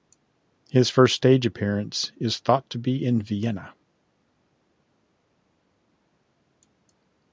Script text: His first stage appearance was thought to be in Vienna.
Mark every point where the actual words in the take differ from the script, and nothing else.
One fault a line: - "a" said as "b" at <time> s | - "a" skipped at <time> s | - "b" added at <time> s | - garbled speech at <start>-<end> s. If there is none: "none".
- "was" said as "is" at 2.2 s